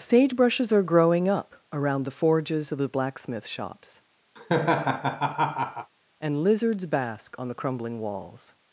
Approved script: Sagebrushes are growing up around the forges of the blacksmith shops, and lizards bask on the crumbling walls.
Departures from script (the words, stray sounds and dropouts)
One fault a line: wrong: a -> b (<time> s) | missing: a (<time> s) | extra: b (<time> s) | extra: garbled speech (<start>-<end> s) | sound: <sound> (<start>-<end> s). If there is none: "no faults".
sound: laugh (4.4-5.9 s)